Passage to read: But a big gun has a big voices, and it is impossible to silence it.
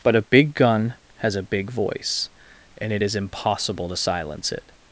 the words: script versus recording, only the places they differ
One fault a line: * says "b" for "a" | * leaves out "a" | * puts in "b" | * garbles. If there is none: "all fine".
* says "voice" for "voices"